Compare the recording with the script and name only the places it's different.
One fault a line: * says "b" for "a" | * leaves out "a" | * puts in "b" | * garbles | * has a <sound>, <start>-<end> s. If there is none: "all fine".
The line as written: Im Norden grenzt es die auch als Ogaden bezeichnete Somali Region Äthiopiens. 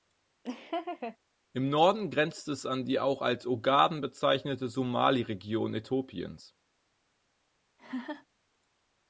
* has a laugh, 0.4-1.2 s
* puts in "an"
* has a laugh, 7.8-8.3 s